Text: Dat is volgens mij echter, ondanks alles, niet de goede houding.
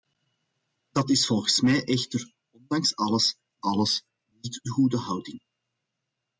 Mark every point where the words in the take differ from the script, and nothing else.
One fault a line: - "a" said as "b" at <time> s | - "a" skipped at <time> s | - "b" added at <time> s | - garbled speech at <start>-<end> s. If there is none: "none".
- "alles" added at 3.6 s